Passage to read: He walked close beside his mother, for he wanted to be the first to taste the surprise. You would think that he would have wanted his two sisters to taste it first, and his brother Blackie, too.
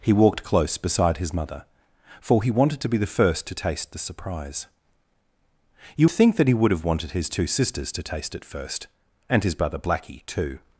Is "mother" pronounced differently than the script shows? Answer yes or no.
no